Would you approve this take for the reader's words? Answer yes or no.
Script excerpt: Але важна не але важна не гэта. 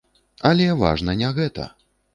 no